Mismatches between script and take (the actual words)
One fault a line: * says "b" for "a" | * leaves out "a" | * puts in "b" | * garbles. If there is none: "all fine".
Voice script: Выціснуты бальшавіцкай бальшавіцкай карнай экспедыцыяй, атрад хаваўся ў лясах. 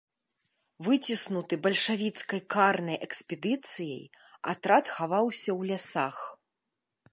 * leaves out "бальшавіцкай"